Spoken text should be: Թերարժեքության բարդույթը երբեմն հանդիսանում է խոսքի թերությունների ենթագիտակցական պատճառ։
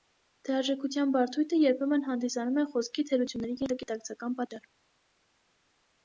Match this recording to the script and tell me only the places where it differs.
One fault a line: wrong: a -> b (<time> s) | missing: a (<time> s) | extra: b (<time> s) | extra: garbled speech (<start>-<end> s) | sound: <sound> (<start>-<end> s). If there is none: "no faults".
no faults